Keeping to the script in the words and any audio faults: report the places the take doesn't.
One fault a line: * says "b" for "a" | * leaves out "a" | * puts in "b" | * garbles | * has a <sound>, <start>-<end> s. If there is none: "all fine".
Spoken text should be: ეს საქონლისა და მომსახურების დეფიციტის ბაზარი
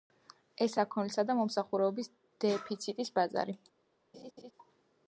* has a laugh, 4.1-4.5 s